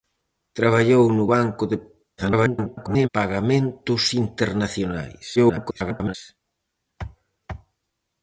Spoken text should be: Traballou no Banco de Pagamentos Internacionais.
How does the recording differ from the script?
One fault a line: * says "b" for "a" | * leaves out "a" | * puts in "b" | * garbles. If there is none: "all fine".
* garbles
* garbles